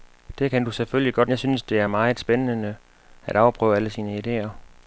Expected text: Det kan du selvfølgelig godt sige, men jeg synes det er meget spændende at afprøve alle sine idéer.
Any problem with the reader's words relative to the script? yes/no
yes